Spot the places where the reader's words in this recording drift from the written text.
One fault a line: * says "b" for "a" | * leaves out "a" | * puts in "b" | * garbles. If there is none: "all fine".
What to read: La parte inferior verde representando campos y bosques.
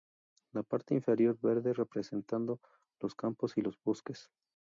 * puts in "los"
* puts in "los"